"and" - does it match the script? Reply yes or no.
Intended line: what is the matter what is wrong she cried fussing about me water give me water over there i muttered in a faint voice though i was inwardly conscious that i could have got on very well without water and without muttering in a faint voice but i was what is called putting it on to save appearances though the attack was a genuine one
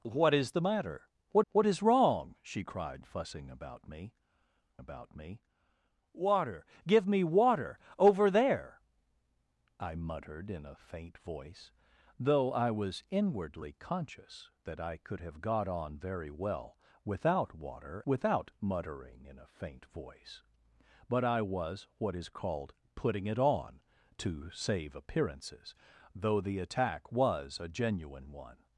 no